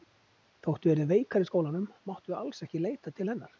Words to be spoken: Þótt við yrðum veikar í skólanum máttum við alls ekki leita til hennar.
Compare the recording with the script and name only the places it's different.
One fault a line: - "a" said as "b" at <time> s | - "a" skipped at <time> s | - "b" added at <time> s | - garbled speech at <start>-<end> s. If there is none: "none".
none